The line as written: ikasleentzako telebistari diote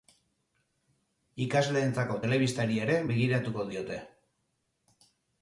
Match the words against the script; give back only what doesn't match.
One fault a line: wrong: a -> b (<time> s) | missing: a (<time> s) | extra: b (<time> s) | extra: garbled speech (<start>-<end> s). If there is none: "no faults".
extra: ere begiratuko (2.8 s)